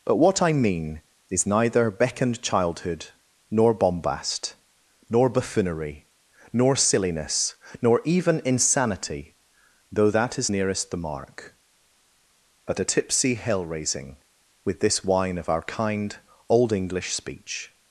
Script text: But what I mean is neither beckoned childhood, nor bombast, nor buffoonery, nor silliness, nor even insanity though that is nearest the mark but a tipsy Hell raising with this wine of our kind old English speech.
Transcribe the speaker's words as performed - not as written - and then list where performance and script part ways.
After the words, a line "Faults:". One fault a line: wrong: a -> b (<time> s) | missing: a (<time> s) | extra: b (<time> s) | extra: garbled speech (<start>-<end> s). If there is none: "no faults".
But what I mean is neither beckoned childhood, nor bombast, nor buffoonery, nor silliness, nor even insanity though that is nearest the mark but a tipsy Hell raising with this wine of our kind old English speech.
Faults:
no faults